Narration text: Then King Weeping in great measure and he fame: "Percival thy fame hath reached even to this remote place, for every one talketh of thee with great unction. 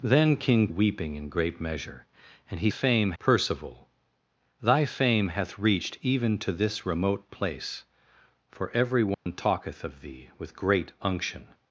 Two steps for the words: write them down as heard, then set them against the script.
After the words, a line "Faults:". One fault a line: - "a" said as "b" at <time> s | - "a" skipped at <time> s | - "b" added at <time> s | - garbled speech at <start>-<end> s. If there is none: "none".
Then King Weeping in great measure and he fame: "Percival thy fame hath reached even to this remote place, for every one talketh of thee with great unction.
Faults:
none